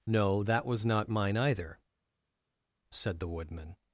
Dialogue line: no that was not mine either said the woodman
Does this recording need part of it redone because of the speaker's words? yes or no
no